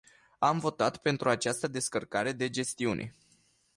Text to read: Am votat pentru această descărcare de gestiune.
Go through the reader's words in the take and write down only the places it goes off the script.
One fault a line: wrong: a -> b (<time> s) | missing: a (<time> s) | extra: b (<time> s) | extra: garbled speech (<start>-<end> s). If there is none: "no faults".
no faults